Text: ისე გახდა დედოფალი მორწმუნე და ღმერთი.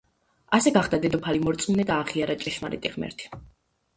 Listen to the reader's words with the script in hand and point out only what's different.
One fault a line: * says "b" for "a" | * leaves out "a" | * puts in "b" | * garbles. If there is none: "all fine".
* says "ასე" for "ისე"
* puts in "აღიარა ჭეშმარიტი"